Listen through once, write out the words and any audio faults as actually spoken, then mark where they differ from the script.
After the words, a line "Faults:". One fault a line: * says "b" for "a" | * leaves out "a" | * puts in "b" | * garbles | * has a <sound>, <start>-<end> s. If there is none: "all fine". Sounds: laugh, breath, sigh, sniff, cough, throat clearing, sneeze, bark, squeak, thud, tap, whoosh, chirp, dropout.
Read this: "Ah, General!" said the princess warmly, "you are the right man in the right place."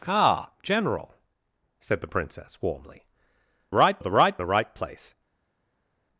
"Ah, General!" said the princess warmly, "right are the right the right place."
Faults:
* says "right" for "you"
* leaves out "man in"